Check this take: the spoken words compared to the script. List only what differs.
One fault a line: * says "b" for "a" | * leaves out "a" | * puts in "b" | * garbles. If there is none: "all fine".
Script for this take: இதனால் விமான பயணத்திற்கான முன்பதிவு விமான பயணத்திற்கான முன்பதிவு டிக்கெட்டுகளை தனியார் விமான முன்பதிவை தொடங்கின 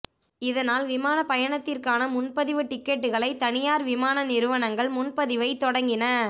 * leaves out "விமான பயணத்திற்கான முன்பதிவு"
* puts in "நிறுவனங்கள்"